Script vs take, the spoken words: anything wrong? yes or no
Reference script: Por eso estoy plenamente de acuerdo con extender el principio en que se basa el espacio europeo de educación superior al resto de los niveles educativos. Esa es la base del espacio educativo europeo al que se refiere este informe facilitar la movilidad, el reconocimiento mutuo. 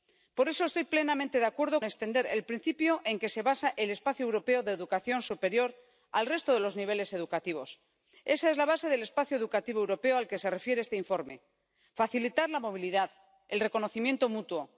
yes